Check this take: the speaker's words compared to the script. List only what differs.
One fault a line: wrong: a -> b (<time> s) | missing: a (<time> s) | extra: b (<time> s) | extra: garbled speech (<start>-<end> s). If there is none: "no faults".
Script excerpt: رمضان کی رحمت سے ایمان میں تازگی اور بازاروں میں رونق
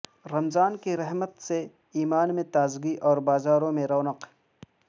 no faults